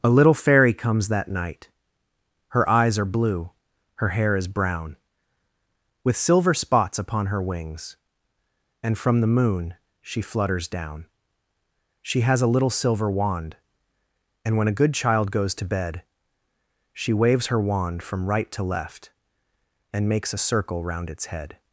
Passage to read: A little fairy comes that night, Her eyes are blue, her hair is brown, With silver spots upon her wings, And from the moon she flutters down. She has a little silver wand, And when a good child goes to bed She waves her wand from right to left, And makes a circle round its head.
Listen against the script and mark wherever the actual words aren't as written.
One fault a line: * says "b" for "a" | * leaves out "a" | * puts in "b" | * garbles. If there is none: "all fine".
all fine